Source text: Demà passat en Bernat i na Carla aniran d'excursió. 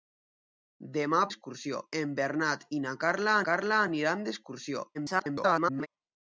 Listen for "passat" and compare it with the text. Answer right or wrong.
wrong